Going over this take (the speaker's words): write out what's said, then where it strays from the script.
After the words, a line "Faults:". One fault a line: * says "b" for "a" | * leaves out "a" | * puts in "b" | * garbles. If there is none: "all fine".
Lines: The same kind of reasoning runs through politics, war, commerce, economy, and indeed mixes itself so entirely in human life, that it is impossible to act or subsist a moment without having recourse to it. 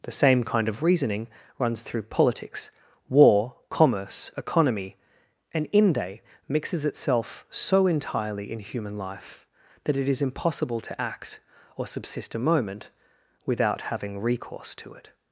The same kind of reasoning runs through politics, war, commerce, economy, and inde mixes itself so entirely in human life, that it is impossible to act or subsist a moment without having recourse to it.
Faults:
* says "inde" for "indeed"